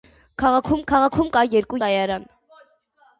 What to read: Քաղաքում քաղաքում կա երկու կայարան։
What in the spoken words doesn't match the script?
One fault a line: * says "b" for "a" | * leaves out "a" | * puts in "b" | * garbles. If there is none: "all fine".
all fine